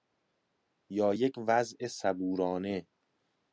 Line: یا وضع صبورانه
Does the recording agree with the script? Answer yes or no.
no